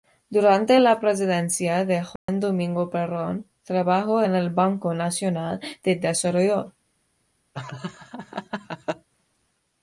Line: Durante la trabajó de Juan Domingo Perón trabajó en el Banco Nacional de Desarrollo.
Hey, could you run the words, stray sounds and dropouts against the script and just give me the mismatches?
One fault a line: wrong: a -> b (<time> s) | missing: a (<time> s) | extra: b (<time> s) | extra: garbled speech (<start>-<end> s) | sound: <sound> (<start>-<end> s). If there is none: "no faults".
wrong: trabajó -> presidencia (1.0 s)
sound: dropout (2.2-2.3 s)
sound: laugh (7.5-9.1 s)